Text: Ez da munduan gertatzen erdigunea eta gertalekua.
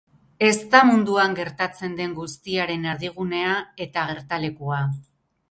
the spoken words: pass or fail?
fail